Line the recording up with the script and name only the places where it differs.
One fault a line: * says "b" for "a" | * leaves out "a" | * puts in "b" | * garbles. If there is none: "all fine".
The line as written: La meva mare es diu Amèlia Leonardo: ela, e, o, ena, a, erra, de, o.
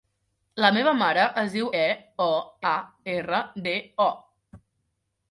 * leaves out "Amèlia Leonardo ela"
* leaves out "ena"